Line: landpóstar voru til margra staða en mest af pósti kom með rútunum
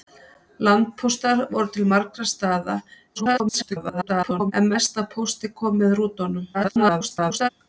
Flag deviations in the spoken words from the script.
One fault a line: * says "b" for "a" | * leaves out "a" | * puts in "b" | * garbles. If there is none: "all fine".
* garbles
* garbles